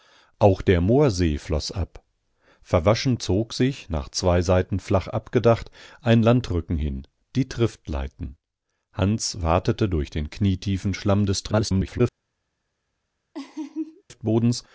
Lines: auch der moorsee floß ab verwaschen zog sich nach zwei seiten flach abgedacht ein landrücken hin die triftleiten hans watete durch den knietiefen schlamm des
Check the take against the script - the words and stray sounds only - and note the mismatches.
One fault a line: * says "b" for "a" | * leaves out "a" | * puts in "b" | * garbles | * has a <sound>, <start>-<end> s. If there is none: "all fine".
* garbles
* has a laugh, 13.3-14.0 s